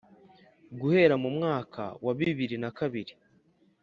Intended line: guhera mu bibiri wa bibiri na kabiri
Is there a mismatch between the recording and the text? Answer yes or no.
yes